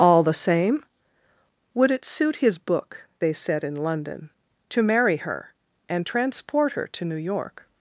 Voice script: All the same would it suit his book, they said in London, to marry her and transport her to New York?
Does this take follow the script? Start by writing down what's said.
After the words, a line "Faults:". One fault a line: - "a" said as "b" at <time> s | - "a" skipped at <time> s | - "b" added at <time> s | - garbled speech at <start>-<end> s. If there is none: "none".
All the same would it suit his book, they said in London, to marry her and transport her to New York?
Faults:
none